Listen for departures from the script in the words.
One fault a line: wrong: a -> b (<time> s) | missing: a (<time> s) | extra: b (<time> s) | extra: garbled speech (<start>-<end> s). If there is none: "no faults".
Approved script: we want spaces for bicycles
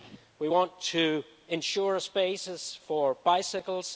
extra: to ensure (0.8 s)